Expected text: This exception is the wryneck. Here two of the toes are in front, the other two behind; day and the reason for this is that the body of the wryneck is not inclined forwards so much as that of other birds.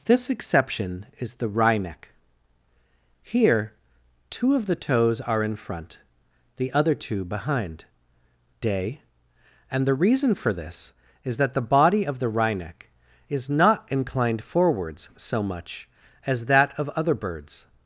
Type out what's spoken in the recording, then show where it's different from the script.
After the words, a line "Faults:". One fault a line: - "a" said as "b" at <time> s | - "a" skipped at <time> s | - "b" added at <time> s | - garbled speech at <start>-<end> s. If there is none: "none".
This exception is the wryneck. Here two of the toes are in front, the other two behind; day and the reason for this is that the body of the wryneck is not inclined forwards so much as that of other birds.
Faults:
none